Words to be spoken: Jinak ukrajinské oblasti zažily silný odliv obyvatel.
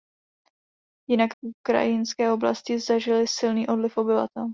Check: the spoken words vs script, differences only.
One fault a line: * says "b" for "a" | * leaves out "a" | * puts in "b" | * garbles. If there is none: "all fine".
all fine